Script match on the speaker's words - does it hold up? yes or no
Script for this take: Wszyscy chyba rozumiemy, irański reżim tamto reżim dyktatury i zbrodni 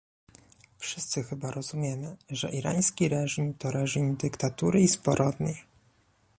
no